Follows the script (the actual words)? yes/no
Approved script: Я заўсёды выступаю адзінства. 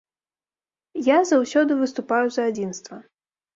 no